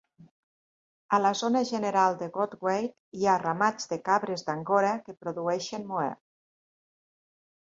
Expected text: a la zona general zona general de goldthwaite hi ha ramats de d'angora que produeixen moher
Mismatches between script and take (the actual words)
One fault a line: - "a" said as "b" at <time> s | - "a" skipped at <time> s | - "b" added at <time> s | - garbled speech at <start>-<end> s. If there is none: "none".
- "zona general" skipped at 2.2 s
- "cabres" added at 4.1 s